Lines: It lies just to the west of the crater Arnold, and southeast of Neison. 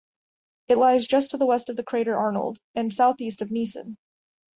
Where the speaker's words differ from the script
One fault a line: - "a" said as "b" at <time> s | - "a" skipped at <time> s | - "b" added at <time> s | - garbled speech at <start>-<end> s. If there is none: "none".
none